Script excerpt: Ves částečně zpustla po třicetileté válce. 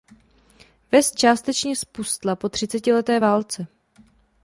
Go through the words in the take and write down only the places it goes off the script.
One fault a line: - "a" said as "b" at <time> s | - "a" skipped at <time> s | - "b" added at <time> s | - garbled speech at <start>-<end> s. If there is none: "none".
none